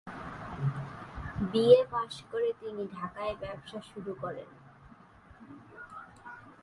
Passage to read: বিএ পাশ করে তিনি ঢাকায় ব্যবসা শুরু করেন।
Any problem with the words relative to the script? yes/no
no